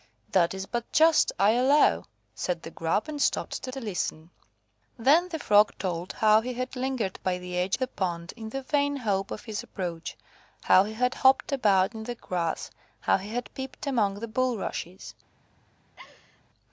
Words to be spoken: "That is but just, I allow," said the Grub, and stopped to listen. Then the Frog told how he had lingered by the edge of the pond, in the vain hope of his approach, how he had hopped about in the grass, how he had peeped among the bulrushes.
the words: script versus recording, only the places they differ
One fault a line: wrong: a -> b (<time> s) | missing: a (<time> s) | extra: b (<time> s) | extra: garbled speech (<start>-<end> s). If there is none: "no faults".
extra: to (3.7 s)
missing: of (7.8 s)